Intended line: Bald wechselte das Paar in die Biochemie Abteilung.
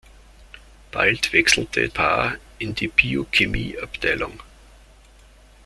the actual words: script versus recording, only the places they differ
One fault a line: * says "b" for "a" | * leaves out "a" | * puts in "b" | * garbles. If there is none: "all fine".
* leaves out "das"